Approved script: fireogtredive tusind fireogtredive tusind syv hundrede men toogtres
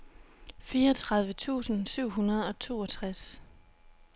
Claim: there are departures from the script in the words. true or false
true